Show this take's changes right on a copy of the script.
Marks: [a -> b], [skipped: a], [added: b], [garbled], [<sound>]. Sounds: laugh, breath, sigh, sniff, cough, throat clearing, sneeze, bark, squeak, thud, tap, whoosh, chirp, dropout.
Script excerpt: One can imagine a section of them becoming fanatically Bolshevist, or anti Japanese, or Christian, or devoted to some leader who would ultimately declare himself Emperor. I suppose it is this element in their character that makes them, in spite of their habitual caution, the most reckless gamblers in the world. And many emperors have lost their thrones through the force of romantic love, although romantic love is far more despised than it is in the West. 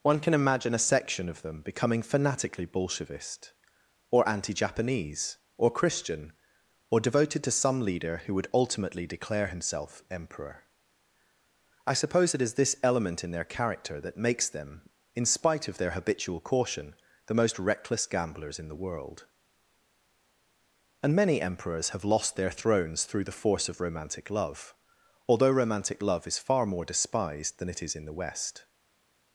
One can imagine a section of them becoming fanatically Bolshevist, or anti Japanese, or Christian, or devoted to some leader who would ultimately declare himself Emperor. I suppose it is this element in their character that makes them, in spite of their habitual caution, the most reckless gamblers in the world. And many emperors have lost their thrones through the force of romantic love, although romantic love is far more despised than it is in the West.